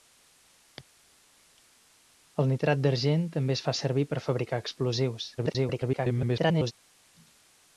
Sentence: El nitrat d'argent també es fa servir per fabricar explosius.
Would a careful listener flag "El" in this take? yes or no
no